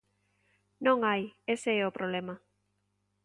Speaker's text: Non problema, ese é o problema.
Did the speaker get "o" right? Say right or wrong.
right